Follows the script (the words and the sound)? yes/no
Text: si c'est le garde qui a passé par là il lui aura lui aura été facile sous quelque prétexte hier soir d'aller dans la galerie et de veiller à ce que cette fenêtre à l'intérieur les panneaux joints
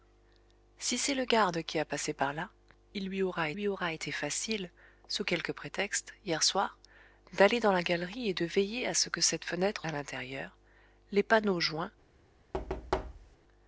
no